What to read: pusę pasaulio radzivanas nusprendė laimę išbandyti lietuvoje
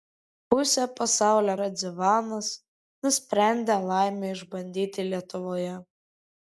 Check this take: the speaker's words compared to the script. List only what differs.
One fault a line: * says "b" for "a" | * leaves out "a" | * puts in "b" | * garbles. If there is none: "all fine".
all fine